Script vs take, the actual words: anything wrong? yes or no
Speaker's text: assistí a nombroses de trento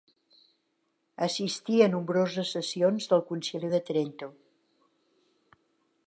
yes